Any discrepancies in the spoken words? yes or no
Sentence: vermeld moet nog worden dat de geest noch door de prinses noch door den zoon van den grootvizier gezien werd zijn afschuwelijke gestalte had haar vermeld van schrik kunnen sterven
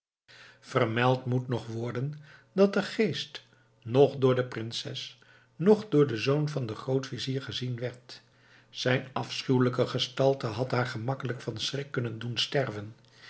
yes